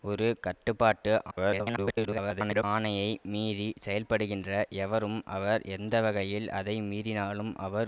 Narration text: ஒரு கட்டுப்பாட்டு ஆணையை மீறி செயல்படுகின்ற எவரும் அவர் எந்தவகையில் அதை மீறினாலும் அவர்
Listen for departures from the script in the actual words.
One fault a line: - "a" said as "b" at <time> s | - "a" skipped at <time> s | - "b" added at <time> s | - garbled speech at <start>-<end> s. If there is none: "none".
- garbled speech at 1.3-2.6 s